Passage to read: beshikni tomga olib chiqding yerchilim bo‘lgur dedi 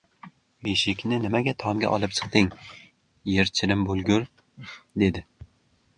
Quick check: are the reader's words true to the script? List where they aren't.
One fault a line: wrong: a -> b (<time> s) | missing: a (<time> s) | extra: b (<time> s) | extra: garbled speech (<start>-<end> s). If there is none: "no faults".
extra: nimaga (1.2 s)